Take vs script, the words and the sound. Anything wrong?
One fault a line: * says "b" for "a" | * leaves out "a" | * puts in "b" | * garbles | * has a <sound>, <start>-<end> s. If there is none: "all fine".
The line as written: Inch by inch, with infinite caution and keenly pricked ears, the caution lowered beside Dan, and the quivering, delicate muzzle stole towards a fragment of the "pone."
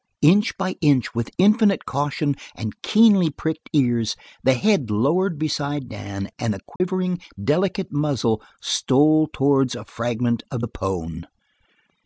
* says "head" for "caution"
* has a dropout, 6.8-6.8 s